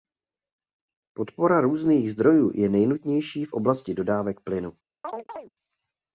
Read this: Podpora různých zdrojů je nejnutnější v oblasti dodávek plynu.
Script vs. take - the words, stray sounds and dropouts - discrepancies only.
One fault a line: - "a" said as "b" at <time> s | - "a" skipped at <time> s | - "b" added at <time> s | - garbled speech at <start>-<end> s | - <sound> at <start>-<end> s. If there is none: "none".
- chirp at 5.0-5.5 s